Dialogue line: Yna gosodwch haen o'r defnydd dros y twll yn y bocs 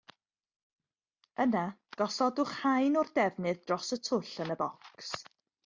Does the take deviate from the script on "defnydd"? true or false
false